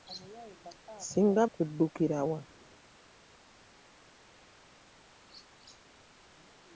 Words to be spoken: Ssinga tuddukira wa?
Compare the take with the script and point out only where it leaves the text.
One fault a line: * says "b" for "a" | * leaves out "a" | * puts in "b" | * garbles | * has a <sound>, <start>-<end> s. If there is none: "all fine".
all fine